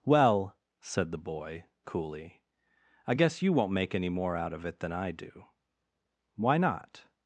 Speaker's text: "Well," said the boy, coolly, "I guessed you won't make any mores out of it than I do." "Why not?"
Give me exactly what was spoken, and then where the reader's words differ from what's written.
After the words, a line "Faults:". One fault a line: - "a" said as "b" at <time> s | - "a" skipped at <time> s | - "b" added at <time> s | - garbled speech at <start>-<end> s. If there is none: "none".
"Well," said the boy, coolly, "I guess you won't make any more out of it than I do." "Why not?"
Faults:
- "guessed" said as "guess" at 3.1 s
- "mores" said as "more" at 4.1 s